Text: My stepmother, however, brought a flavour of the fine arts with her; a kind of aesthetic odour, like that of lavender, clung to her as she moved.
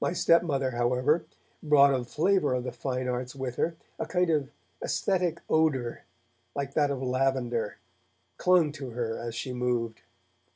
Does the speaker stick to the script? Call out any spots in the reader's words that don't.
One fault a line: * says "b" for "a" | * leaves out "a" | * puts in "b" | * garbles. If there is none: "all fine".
all fine